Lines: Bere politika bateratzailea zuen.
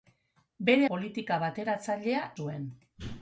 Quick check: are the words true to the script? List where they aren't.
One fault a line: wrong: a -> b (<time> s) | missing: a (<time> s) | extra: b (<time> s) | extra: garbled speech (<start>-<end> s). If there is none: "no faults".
no faults